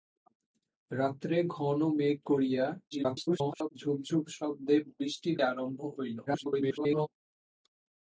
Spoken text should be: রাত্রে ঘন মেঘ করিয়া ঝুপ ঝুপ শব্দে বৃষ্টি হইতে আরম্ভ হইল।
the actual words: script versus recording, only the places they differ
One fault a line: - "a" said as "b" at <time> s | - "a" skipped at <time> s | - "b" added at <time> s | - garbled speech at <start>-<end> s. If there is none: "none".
- garbled speech at 2.9-3.7 s
- "হইতে" skipped at 5.3 s
- garbled speech at 6.3-7.1 s